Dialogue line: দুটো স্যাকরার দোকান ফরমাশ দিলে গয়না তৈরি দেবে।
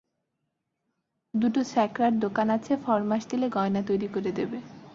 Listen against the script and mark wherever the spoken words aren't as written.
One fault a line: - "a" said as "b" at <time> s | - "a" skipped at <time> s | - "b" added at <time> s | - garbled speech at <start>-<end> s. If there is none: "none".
- "আছে" added at 2.5 s
- "করে" added at 4.1 s